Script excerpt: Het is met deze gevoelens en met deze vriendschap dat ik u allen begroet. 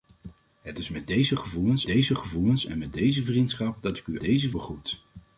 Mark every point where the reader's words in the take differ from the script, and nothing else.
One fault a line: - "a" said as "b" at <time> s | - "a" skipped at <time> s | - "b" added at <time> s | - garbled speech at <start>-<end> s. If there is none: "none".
- "deze gevoelens" added at 1.9 s
- "allen" said as "deze" at 4.2 s